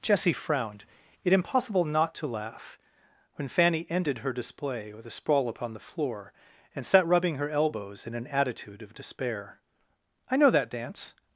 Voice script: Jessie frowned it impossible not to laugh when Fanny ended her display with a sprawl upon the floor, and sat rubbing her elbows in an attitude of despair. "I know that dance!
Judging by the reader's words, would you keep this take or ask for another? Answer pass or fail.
pass